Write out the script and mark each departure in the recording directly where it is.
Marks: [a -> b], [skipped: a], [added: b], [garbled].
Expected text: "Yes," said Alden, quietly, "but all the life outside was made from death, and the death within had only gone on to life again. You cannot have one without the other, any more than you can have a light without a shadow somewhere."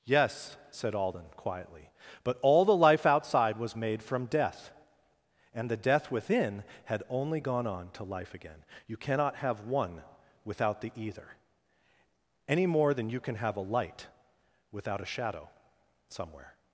"Yes," said Alden, quietly, "but all the life outside was made from death, and the death within had only gone on to life again. You cannot have one without the [other, -> either] any more than you can have a light without a shadow somewhere."